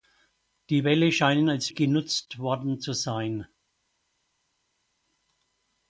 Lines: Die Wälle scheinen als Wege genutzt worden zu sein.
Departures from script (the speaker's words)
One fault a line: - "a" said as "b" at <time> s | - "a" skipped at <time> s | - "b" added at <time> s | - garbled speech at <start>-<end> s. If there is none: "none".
- "Wege" skipped at 1.7 s